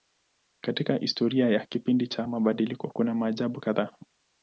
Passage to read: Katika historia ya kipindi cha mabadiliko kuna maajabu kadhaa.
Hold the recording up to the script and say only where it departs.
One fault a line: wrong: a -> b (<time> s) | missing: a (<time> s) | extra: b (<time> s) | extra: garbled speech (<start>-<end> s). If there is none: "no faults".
no faults